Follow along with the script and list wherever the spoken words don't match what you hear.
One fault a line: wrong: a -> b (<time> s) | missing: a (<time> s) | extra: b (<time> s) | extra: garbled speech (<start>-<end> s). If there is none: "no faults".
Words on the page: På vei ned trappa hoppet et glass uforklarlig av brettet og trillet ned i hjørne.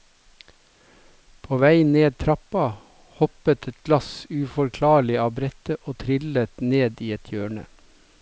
extra: et (7.2 s)